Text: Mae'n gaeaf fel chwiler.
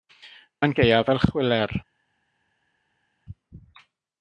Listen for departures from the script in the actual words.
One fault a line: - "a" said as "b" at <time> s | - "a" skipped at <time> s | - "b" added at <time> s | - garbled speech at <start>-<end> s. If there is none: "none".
none